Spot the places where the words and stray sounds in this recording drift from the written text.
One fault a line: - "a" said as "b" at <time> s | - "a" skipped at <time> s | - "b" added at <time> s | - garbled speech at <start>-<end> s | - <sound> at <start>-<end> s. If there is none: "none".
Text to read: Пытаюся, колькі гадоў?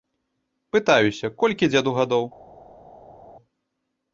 - "дзеду" added at 1.7 s